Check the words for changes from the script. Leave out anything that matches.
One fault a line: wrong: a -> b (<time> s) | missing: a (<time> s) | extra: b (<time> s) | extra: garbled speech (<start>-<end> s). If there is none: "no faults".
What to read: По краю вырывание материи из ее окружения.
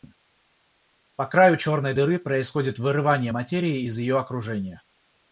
extra: черной дыры происходит (1.6 s)